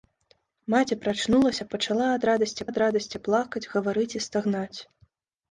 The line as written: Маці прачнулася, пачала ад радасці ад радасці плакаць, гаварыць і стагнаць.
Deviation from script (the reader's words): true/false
false